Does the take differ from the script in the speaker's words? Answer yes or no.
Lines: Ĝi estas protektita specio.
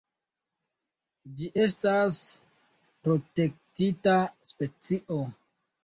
no